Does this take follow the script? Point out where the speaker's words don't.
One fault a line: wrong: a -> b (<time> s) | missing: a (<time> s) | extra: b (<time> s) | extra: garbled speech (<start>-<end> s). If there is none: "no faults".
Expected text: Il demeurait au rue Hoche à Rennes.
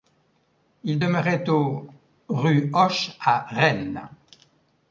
no faults